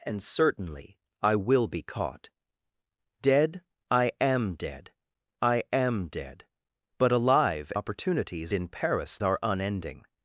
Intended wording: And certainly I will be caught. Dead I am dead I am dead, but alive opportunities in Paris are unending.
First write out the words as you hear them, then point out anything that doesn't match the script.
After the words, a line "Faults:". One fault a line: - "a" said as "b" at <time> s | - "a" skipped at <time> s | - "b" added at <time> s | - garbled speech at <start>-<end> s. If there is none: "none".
And certainly I will be caught. Dead I am dead I am dead, but alive opportunities in Paris are unending.
Faults:
none